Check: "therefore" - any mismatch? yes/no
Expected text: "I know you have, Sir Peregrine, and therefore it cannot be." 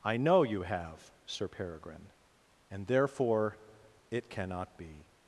no